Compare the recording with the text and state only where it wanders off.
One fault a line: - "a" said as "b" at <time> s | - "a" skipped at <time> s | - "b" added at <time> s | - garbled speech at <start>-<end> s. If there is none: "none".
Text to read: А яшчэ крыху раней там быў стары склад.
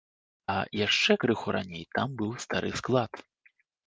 none